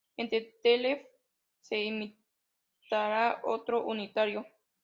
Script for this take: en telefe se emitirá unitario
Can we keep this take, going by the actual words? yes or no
no